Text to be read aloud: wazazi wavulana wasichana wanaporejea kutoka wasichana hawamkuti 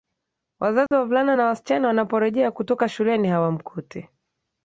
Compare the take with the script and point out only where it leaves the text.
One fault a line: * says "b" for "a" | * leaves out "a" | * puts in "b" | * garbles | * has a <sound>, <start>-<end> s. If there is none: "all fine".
* has a dropout, 0.9-0.9 s
* puts in "na"
* says "shuleni" for "wasichana"